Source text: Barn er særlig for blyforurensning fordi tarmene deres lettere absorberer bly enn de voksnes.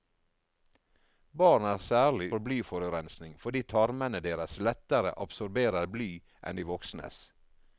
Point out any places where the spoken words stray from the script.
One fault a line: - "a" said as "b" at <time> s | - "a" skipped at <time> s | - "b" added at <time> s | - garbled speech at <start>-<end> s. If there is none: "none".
none